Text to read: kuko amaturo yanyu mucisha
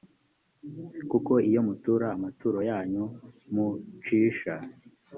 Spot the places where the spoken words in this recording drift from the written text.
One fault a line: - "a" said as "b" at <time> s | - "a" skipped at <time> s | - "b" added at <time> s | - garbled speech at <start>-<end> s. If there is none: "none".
- "iyo mutura" added at 1.5 s